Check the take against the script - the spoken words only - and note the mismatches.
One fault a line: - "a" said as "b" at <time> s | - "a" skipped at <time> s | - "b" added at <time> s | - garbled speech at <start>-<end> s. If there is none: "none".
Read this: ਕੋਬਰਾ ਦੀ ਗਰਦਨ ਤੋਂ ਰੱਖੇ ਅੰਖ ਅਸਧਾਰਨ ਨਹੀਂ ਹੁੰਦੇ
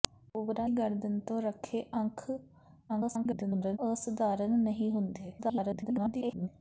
- "ਦੀ" skipped at 0.7 s
- garbled speech at 2.9-3.8 s
- garbled speech at 5.4-6.5 s